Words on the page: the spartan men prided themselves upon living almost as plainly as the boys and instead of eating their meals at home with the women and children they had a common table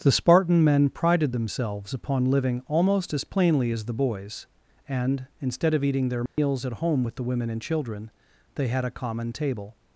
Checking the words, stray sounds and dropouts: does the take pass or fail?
fail